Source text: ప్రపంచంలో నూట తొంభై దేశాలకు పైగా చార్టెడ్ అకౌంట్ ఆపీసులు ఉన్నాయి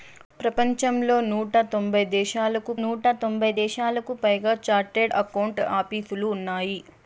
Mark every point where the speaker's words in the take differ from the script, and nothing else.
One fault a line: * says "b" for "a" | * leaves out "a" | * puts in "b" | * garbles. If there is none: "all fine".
* puts in "నూట తొంభై దేశాలకు"